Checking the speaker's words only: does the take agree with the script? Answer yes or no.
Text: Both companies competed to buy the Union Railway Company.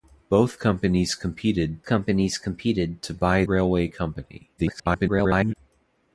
no